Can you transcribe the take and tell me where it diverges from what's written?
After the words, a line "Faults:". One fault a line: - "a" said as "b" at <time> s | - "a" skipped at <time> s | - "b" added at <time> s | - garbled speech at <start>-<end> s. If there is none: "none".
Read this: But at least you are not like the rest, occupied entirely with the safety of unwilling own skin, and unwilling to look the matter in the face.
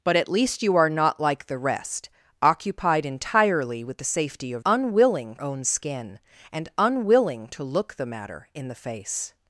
But at least you are not like the rest, occupied entirely with the safety of unwilling own skin, and unwilling to look the matter in the face.
Faults:
none